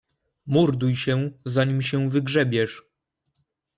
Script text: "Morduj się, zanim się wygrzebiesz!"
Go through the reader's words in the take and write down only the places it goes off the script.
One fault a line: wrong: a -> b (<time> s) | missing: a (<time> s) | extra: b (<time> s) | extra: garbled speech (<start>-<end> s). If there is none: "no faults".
no faults